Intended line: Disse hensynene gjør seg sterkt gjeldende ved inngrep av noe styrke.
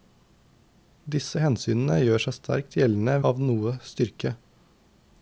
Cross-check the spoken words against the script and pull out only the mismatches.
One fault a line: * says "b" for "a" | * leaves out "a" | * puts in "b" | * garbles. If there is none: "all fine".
* leaves out "ved inngrep"